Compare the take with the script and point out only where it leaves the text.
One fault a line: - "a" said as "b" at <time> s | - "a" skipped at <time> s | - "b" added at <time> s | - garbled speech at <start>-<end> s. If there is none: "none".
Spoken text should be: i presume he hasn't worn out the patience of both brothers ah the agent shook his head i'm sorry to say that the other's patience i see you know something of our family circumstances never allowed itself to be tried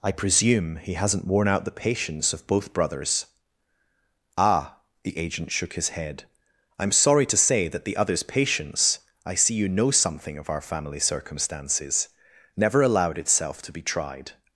none